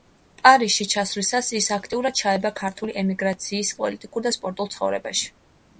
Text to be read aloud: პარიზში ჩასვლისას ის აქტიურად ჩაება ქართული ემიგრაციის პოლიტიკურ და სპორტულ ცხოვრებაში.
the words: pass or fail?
pass